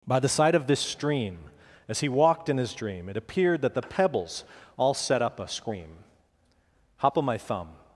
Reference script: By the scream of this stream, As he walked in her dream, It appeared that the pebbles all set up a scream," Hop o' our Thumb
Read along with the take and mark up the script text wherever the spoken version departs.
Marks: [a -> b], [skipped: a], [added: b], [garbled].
By the [scream -> side] of this stream, As he walked in [her -> his] dream, It appeared that the pebbles all set up a scream," Hop o' [our -> my] Thumb